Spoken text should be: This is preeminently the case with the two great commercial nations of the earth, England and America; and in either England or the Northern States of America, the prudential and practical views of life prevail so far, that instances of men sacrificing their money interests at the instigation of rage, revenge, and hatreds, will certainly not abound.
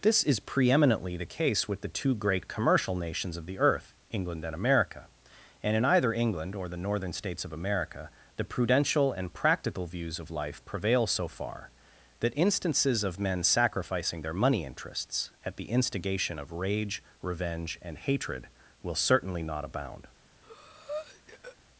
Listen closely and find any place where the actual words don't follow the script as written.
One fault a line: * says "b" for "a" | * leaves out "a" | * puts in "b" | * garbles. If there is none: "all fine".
* says "hatred" for "hatreds"